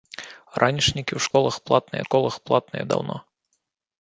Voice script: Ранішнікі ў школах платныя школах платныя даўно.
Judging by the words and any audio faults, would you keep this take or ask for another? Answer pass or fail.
fail